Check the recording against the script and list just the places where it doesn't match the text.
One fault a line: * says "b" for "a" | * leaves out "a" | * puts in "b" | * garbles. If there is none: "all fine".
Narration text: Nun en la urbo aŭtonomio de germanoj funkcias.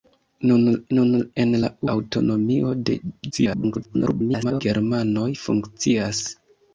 * puts in "nun"
* leaves out "urbo"
* garbles